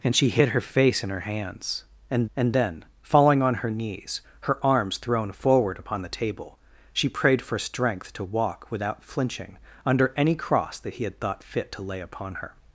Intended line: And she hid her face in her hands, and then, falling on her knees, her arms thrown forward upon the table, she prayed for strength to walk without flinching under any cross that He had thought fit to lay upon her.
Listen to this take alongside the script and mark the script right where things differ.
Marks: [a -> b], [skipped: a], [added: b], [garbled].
And she hid her face in her hands, and [added: and] then, falling on her knees, her arms thrown forward upon the table, she prayed for strength to walk without flinching under any cross that He had thought fit to lay upon her.